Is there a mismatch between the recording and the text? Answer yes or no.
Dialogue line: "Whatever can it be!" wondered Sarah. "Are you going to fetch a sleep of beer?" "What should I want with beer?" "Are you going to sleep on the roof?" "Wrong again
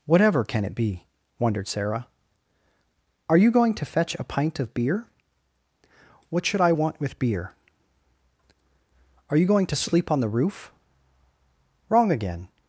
yes